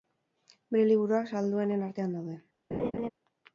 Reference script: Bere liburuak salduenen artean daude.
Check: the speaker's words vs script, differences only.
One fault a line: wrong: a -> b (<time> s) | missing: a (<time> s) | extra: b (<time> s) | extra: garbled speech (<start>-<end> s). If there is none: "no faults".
no faults